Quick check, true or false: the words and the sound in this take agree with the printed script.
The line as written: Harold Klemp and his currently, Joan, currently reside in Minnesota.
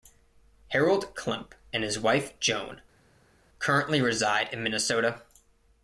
false